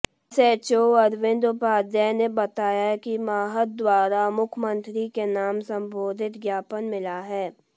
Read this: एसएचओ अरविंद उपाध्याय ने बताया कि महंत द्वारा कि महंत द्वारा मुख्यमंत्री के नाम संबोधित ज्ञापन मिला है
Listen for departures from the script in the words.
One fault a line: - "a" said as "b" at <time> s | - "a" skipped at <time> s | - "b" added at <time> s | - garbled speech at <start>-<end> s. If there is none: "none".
- "कि महंत द्वारा" skipped at 4.3 s